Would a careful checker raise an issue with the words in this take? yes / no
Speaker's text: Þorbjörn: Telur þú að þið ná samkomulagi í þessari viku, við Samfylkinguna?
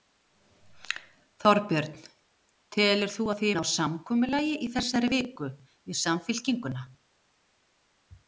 no